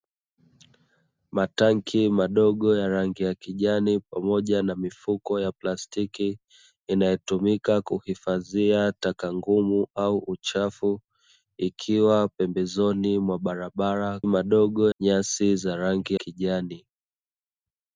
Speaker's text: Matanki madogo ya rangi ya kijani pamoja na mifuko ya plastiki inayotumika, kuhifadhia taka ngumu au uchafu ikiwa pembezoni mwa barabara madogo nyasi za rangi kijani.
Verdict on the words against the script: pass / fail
pass